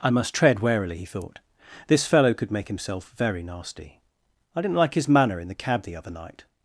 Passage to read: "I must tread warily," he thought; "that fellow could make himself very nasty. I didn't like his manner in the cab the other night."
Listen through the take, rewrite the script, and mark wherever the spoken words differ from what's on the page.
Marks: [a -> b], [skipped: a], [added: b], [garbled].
"I must tread warily," he thought; ["that -> this] fellow could make himself very nasty. I didn't like his manner in the cab the other night."